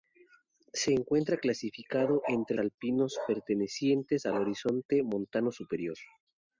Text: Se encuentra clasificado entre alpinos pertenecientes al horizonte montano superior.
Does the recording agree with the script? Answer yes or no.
yes